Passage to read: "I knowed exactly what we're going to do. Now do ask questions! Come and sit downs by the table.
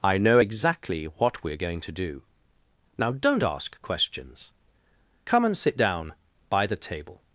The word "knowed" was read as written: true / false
false